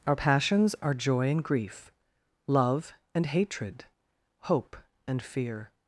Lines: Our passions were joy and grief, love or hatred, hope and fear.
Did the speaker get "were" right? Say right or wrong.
wrong